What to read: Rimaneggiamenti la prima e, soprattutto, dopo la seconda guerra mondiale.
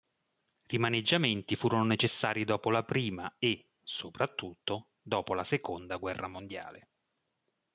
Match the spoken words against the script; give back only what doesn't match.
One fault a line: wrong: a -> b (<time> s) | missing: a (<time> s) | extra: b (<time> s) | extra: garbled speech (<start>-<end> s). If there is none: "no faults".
extra: furono necessari dopo (1.6 s)